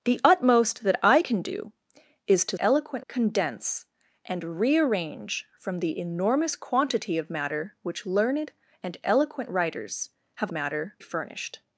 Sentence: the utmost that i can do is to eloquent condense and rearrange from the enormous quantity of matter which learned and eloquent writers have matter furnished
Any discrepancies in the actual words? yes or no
no